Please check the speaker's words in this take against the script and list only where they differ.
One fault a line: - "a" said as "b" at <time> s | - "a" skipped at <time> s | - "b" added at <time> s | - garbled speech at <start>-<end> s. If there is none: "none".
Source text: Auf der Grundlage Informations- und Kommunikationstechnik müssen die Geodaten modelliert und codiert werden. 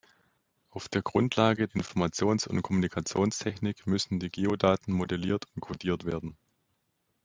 none